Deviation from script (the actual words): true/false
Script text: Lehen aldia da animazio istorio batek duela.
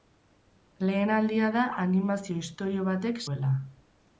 false